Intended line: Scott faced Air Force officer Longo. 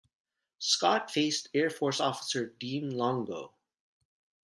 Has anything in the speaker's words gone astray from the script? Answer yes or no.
yes